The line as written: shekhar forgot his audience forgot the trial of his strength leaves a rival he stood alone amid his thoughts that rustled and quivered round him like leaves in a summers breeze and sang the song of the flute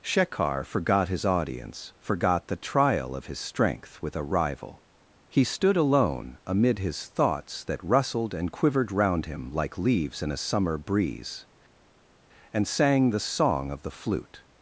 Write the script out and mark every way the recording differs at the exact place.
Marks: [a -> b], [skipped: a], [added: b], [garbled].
shekhar forgot his audience forgot the trial of his strength [leaves -> with] a rival he stood alone amid his thoughts that rustled and quivered round him like leaves in a [summers -> summer] breeze and sang the song of the flute